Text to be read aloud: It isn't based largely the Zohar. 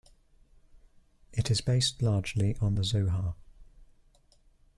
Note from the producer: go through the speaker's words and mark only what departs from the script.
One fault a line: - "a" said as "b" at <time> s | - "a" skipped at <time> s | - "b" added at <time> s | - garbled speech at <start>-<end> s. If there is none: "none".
- "isn't" said as "is" at 1.5 s
- "on" added at 2.6 s